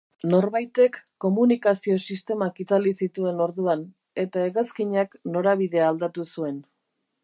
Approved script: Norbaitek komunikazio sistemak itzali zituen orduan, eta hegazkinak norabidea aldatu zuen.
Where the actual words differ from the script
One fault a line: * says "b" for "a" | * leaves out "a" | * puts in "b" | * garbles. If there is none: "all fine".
all fine